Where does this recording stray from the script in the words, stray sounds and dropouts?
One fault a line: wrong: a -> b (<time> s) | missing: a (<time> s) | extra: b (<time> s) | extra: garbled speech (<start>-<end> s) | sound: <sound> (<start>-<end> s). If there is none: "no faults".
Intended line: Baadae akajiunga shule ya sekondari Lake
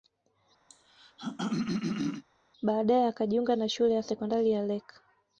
sound: throat clearing (0.7-2.2 s)
extra: na (3.6 s)
extra: ya (4.5 s)